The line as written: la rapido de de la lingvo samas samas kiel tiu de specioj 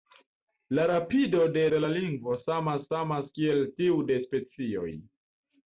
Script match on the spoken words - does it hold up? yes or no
yes